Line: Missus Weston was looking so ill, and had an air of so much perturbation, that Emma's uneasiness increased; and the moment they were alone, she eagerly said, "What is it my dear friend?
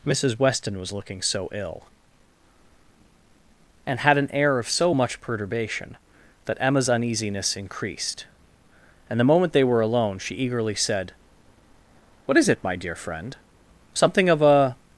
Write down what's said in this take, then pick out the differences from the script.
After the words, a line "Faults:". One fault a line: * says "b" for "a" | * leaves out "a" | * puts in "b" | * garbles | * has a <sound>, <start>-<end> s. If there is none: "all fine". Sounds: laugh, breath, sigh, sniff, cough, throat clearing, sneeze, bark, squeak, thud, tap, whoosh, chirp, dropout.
Missus Weston was looking so ill, and had an air of so much perturbation, that Emma's uneasiness increased; and the moment they were alone, she eagerly said, "What is it my dear friend? Something of a
Faults:
* puts in "Something of a"